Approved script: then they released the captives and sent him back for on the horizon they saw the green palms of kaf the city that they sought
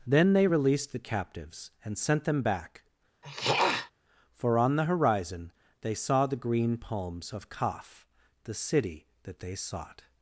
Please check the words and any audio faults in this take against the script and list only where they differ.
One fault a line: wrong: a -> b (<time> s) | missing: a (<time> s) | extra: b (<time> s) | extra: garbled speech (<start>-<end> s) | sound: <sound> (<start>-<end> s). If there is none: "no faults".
wrong: him -> them (2.2 s)
sound: throat clearing (3.2-3.9 s)